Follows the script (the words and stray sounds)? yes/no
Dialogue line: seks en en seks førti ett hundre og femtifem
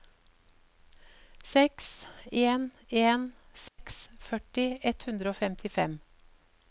no